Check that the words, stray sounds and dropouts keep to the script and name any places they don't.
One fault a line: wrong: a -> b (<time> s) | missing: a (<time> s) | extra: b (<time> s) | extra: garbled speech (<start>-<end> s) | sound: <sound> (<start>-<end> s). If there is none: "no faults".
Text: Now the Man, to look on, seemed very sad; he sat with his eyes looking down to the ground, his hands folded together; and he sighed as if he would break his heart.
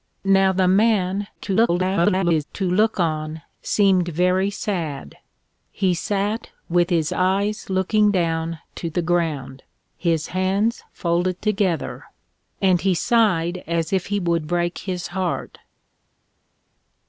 extra: garbled speech (1.4-2.4 s)